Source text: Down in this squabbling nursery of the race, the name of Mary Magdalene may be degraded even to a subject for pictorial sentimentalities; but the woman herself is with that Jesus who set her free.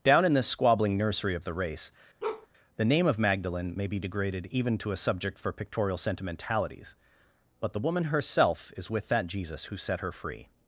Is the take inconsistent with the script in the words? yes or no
yes